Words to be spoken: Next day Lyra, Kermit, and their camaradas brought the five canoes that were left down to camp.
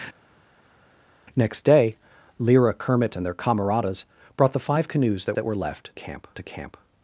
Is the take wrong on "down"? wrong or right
wrong